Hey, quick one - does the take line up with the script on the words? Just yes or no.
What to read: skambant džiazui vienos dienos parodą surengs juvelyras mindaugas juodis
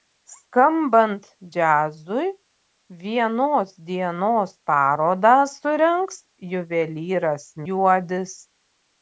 no